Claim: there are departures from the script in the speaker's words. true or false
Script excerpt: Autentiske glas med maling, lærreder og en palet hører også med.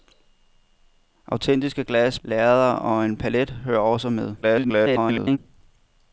true